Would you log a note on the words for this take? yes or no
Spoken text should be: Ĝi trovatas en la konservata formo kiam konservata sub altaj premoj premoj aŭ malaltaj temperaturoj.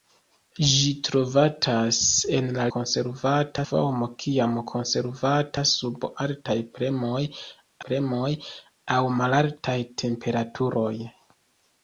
no